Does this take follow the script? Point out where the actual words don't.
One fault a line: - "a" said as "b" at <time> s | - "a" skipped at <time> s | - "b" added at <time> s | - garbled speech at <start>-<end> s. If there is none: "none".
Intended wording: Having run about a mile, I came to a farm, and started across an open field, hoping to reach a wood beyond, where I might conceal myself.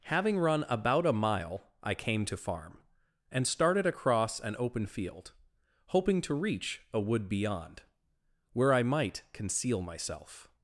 - "a" skipped at 2.4 s